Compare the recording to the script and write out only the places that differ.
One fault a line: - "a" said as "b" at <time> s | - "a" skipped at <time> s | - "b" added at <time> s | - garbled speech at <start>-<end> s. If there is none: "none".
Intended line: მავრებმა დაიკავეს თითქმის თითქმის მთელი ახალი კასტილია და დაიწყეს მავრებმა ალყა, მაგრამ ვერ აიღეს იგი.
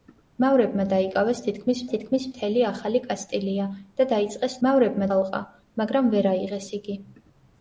none